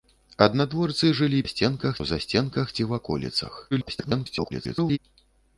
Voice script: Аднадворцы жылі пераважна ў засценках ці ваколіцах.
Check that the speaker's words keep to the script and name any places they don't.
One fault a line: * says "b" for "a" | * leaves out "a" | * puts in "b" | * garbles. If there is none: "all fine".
* says "засценках" for "пераважна"
* garbles